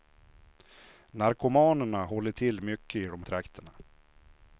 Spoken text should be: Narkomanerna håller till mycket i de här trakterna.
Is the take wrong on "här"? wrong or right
wrong